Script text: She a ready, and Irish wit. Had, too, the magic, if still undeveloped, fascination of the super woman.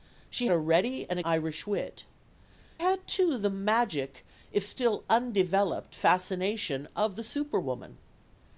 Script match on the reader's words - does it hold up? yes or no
yes